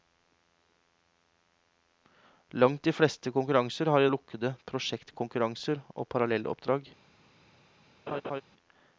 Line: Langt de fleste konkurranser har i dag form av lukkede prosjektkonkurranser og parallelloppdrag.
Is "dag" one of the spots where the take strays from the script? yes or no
yes